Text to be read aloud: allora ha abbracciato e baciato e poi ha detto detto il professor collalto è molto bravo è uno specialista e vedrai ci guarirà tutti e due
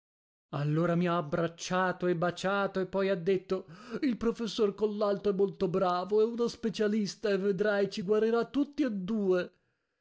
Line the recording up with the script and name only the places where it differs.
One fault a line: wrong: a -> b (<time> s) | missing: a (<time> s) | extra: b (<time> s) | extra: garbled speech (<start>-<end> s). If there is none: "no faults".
extra: mi (0.9 s)
missing: detto (3.7 s)